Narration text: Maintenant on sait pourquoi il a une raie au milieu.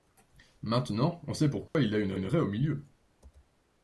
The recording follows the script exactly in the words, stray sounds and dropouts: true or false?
false